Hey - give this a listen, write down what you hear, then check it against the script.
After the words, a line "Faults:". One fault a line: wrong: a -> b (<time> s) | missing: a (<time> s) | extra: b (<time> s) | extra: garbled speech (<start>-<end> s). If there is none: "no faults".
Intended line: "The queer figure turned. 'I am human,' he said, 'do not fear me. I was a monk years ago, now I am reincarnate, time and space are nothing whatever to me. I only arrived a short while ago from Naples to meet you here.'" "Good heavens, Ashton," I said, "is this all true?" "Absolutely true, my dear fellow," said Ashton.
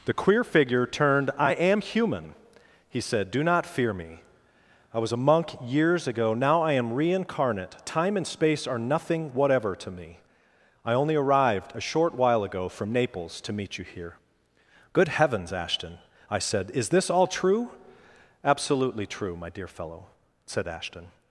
"The queer figure turned. 'I am human,' he said, 'do not fear me. I was a monk years ago, now I am reincarnate, time and space are nothing whatever to me. I only arrived a short while ago from Naples to meet you here.'" "Good heavens, Ashton," I said, "is this all true?" "Absolutely true, my dear fellow," said Ashton.
Faults:
no faults